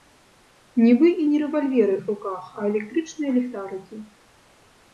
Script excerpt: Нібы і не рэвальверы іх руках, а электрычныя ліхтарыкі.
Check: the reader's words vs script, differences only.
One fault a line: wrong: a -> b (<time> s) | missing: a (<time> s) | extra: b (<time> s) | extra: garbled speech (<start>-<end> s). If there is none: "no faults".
no faults